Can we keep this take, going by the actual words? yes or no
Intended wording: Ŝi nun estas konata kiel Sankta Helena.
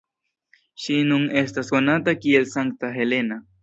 yes